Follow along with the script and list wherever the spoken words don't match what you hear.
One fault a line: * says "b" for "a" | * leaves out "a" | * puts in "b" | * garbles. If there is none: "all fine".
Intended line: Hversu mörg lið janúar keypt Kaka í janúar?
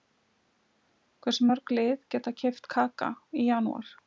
* says "geta" for "janúar"